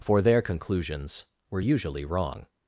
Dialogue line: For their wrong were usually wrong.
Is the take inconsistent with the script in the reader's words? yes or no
yes